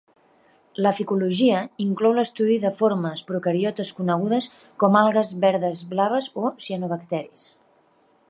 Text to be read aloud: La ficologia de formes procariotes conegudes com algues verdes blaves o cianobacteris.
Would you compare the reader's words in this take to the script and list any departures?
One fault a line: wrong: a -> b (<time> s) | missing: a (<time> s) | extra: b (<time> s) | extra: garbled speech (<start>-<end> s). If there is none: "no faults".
extra: inclou l'estudi (1.8 s)